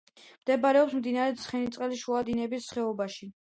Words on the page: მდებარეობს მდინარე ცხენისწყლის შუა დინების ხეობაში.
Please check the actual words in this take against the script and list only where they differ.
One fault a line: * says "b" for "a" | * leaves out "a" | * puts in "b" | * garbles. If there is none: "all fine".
all fine